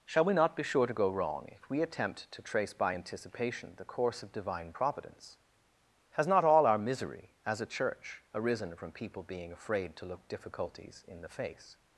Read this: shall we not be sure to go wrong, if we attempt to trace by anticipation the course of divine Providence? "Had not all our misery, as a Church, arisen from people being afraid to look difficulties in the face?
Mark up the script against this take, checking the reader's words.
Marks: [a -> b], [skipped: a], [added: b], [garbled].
shall we not be sure to go wrong, if we attempt to trace by anticipation the course of divine Providence? ["Had -> Has] not all our misery, as a Church, arisen from people being afraid to look difficulties in the face?